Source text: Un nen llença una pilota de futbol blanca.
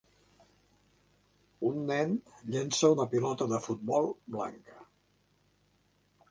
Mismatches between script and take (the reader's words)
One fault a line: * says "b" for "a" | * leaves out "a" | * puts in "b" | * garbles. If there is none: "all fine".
all fine